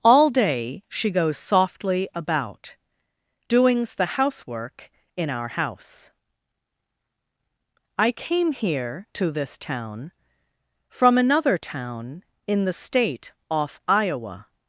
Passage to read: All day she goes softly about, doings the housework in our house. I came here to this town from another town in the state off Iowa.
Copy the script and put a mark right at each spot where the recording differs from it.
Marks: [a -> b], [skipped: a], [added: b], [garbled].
All day she goes softly about, doings the housework in our house. I came here to this town from another town in the state off Iowa.